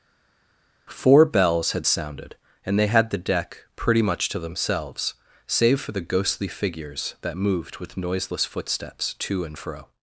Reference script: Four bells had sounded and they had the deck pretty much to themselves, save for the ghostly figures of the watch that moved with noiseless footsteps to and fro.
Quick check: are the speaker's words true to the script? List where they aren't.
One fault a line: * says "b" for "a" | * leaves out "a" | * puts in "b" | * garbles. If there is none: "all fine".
* leaves out "of the watch"